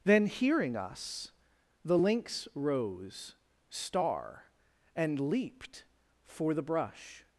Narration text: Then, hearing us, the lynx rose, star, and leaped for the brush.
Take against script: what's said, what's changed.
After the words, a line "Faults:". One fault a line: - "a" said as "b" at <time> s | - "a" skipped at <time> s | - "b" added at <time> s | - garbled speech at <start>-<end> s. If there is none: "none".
Then, hearing us, the lynx rose, star, and leaped for the brush.
Faults:
none